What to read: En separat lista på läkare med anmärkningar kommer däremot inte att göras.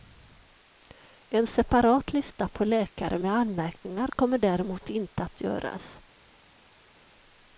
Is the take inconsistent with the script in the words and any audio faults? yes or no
no